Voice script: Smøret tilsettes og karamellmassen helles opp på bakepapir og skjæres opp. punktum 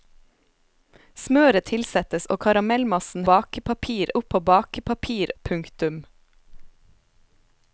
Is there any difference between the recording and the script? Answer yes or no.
yes